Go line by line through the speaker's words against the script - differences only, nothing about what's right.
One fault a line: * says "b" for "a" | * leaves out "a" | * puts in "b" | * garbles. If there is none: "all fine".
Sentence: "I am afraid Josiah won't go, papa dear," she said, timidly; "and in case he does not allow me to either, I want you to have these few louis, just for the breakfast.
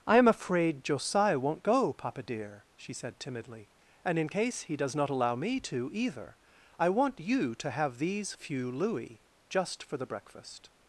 all fine